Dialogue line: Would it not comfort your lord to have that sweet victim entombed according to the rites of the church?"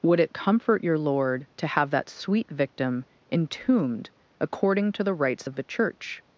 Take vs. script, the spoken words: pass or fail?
fail